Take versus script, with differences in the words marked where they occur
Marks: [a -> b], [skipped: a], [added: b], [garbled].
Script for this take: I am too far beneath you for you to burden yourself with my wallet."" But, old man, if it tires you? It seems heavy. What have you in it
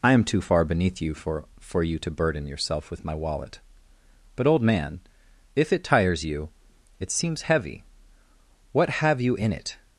I am too far beneath you for [added: for] you to burden yourself with my wallet."" But, old man, if it tires you? It seems heavy. What have you in it